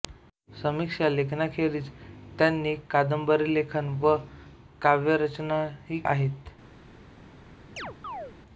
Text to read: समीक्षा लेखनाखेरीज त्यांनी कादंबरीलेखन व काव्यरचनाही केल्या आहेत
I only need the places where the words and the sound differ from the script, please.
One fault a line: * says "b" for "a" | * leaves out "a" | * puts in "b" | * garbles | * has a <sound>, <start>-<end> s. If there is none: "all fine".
* leaves out "केल्या"
* has a chirp, 7.8-8.3 s